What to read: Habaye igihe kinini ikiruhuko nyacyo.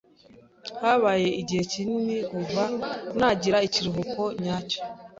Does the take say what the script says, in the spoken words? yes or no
no